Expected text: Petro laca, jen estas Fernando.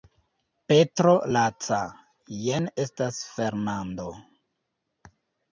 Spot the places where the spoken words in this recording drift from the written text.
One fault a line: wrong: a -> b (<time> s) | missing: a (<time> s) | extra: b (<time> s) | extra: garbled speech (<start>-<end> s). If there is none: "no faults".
no faults